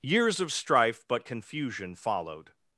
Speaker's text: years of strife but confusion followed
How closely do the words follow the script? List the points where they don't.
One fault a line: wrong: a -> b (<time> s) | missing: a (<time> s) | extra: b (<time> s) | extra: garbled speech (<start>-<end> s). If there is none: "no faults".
no faults